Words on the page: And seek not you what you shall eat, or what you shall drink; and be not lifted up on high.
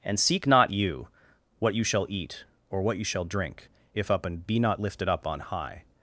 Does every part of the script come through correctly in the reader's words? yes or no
no